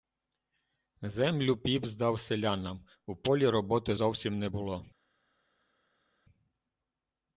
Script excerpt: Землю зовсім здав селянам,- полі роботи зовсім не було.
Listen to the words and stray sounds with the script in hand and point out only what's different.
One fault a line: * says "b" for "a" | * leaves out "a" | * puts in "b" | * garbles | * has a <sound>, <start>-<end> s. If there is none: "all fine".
* says "піп" for "зовсім"
* puts in "у"